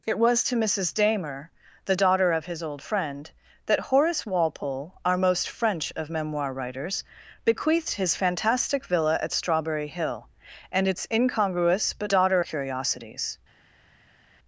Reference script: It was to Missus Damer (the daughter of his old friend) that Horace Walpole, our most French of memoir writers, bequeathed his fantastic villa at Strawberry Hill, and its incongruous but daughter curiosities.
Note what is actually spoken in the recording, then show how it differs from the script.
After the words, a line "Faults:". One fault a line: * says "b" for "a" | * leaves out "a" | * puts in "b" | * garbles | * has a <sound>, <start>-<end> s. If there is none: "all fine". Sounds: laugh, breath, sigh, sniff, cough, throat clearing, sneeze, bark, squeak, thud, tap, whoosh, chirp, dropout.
It was to Missus Damer (the daughter of his old friend) that Horace Walpole, our most French of memoir writers, bequeathed his fantastic villa at Strawberry Hill, and its incongruous but daughter curiosities.
Faults:
all fine